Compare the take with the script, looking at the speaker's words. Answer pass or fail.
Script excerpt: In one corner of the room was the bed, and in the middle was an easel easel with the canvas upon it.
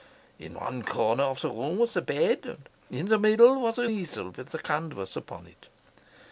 fail